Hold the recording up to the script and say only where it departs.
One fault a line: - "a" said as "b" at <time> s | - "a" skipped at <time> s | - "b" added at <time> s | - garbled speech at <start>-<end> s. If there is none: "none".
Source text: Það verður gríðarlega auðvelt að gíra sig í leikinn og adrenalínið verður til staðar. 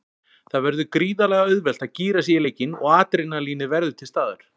none